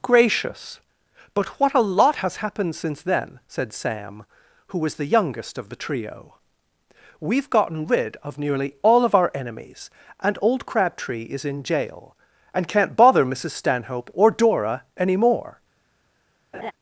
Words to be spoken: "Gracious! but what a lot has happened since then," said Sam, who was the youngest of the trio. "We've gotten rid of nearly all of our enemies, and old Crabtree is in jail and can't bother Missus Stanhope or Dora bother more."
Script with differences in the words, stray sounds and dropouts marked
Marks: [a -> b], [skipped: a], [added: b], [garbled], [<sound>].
"Gracious! but what a lot has happened since then," said Sam, who was the youngest of the trio. "We've gotten rid of nearly all of our enemies, and old Crabtree is in jail and can't bother Missus Stanhope or Dora [bother -> any] more." [laugh]